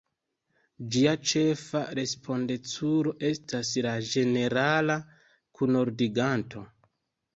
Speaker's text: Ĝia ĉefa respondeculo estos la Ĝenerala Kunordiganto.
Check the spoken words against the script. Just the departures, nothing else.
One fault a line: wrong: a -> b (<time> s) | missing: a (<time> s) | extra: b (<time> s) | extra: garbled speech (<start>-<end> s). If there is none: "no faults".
wrong: estos -> estas (3.3 s)